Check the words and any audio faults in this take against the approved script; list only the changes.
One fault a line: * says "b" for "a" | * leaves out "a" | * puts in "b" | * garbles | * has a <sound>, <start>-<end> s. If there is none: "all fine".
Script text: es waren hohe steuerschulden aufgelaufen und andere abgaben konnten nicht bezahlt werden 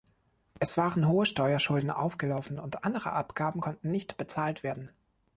all fine